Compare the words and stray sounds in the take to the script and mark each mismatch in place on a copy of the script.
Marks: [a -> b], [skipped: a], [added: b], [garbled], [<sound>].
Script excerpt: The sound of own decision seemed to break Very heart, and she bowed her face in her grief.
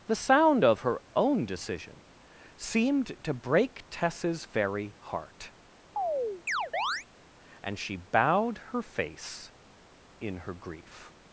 The sound of [added: her] own decision seemed to break [added: Tess's] Very heart, [chirp] and she bowed her face in her grief.